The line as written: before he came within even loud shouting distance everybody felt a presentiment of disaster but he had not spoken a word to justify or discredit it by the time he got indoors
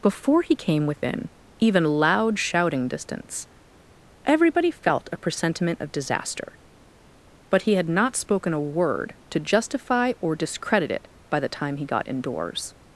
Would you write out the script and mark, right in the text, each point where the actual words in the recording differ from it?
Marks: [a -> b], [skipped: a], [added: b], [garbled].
before he came within even loud shouting distance everybody felt a presentiment of disaster but he had not spoken a word to justify or discredit it by the time he got indoors